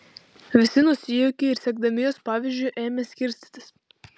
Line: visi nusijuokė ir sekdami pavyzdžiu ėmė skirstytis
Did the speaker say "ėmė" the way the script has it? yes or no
yes